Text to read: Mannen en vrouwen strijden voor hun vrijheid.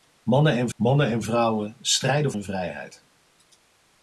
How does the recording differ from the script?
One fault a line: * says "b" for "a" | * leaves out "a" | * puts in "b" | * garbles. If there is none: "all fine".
* puts in "mannen en"
* leaves out "voor"